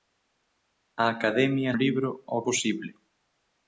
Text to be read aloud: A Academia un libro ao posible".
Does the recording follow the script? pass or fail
pass